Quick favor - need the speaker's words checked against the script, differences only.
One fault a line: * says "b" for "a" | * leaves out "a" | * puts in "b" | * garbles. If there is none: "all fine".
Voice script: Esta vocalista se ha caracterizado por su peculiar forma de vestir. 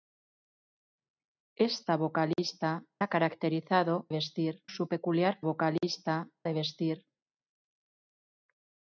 * leaves out "se"
* says "vestir" for "por"
* says "vocalista" for "forma"